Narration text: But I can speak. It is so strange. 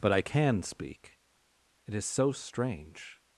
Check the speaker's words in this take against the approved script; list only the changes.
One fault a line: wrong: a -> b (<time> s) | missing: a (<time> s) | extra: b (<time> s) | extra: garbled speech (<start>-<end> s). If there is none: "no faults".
no faults